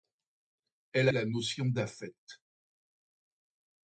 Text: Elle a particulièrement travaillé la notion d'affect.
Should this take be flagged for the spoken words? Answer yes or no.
yes